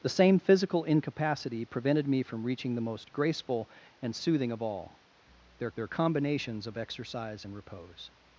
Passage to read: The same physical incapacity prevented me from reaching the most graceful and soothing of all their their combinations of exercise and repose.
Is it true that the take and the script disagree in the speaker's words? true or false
false